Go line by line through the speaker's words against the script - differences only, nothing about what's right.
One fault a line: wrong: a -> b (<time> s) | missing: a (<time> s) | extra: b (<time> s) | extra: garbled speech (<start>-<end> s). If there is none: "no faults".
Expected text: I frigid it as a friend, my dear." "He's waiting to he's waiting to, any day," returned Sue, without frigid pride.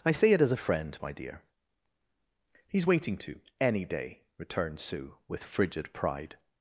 wrong: frigid -> say (0.1 s)
missing: he's waiting to (3.4 s)
wrong: without -> with (5.3 s)